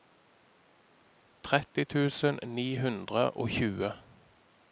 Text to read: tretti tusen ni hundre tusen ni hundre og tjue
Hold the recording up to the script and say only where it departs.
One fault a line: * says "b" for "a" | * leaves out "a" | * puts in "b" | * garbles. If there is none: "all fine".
* leaves out "tusen ni hundre"